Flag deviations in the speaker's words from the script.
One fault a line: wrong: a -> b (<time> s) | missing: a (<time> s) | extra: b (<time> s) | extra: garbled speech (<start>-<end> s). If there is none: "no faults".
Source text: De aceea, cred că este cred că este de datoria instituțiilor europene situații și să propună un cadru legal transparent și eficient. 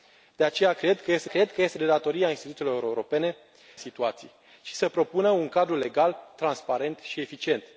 no faults